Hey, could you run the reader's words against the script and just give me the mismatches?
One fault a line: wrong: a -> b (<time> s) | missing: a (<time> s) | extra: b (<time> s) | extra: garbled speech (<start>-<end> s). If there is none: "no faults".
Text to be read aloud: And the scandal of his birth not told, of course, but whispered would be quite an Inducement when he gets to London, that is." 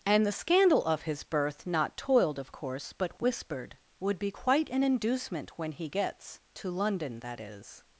wrong: told -> toiled (2.0 s)